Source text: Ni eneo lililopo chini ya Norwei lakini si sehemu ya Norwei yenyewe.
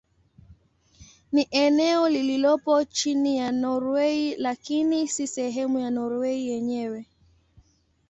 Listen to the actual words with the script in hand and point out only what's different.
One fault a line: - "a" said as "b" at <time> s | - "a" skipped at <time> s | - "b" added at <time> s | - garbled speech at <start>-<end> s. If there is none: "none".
none